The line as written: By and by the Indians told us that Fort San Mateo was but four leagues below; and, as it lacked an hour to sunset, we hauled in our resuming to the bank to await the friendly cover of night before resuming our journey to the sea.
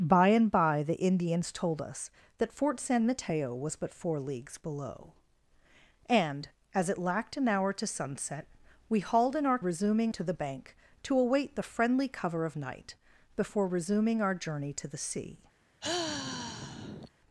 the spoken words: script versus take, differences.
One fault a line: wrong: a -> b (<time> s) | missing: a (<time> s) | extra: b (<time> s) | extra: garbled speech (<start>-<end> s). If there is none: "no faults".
no faults